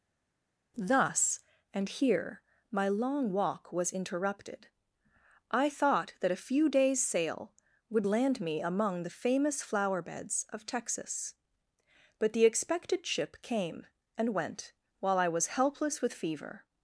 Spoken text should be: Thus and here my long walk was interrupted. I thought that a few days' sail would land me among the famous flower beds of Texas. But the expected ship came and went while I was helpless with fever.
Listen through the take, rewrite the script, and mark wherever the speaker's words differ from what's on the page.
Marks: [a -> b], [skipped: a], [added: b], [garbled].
Thus and here my long walk was interrupted. I thought that a few days' sail would land me among the famous flower beds of Texas. But the expected ship came and went while I was helpless with fever.